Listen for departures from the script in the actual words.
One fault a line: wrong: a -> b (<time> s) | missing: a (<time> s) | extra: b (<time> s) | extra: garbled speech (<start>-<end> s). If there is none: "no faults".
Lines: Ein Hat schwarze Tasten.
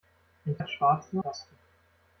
no faults